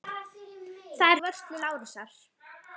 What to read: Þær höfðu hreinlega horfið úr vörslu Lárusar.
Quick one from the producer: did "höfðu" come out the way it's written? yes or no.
no